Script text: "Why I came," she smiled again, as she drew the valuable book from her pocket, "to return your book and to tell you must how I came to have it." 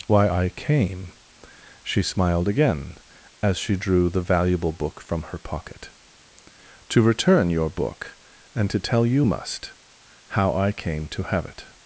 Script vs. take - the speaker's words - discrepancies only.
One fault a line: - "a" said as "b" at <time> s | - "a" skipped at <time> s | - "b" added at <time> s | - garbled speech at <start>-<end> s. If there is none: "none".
none